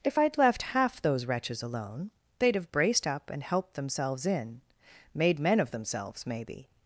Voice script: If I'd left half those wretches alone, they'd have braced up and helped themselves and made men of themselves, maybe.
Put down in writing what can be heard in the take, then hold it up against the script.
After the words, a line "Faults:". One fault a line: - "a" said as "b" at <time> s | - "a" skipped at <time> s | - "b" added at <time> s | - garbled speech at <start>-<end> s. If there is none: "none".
If I'd left half those wretches alone, they'd have braced up and helped themselves in made men of themselves, maybe.
Faults:
- "and" said as "in" at 4.3 s